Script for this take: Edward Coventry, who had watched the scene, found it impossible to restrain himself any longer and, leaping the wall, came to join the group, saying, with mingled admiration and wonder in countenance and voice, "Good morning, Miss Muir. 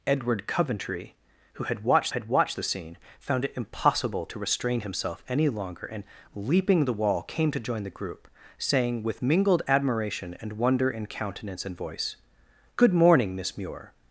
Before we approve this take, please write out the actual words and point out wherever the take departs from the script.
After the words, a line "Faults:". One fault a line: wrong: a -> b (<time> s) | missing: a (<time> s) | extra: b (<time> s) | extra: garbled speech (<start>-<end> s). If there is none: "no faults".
Edward Coventry, who had watched had watched the scene, found it impossible to restrain himself any longer and, leaping the wall, came to join the group, saying, with mingled admiration and wonder in countenance and voice, "Good morning, Miss Muir.
Faults:
extra: had watched (2.1 s)